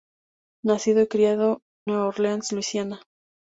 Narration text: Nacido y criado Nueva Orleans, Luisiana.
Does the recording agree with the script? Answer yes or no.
yes